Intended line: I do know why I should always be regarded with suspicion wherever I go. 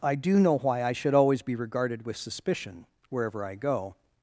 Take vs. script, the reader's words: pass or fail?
pass